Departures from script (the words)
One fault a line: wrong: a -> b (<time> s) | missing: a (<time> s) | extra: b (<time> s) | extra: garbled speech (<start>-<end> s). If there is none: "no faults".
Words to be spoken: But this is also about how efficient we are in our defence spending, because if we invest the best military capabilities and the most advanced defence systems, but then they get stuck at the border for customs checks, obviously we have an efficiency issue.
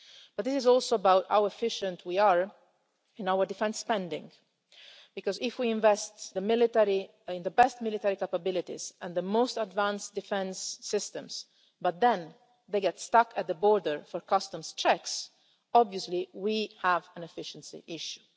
no faults